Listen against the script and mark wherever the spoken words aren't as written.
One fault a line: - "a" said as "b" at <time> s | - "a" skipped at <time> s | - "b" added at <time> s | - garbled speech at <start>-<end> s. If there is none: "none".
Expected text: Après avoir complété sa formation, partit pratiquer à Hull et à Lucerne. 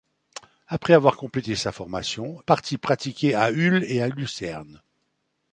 none